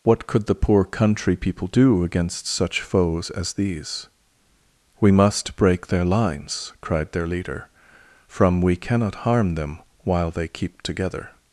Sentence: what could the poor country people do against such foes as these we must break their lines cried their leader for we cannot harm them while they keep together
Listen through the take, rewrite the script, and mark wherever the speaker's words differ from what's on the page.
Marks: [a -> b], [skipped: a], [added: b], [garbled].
what could the poor country people do against such foes as these we must break their lines cried their leader [for -> from] we cannot harm them while they keep together